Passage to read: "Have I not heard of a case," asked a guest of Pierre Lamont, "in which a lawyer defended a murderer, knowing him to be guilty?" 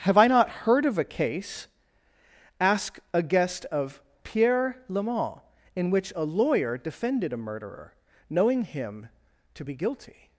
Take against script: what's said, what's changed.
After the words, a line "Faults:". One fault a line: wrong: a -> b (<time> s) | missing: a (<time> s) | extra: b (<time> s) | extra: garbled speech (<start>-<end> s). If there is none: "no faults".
"Have I not heard of a case," ask a guest of Pierre Lamont, "in which a lawyer defended a murderer, knowing him to be guilty?"
Faults:
wrong: asked -> ask (2.6 s)